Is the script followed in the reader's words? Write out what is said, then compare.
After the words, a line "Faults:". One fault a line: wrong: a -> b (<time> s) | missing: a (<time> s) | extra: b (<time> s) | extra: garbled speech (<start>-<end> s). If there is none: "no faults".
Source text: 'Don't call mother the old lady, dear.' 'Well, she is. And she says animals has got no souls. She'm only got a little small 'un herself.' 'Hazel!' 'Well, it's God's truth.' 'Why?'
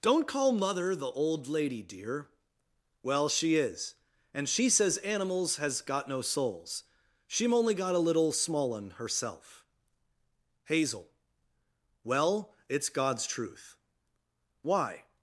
'Don't call mother the old lady, dear.' 'Well, she is. And she says animals has got no souls. She'm only got a little small 'un herself.' 'Hazel!' 'Well, it's God's truth.' 'Why?'
Faults:
no faults